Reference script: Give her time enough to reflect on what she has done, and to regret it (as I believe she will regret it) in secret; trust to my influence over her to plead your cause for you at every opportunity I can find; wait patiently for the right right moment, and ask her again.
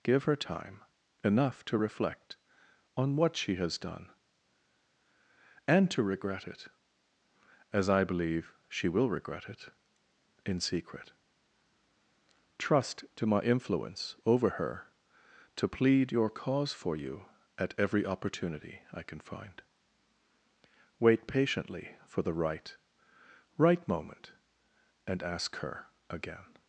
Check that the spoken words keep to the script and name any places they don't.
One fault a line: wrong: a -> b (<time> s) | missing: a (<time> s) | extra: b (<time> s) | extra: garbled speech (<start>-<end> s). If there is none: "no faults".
no faults